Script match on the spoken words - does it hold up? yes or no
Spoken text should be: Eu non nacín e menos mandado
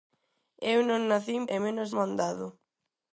yes